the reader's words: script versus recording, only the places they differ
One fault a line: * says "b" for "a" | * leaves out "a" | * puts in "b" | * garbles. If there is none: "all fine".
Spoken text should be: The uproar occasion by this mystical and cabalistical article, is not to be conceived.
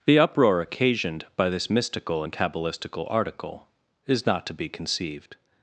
* says "occasioned" for "occasion"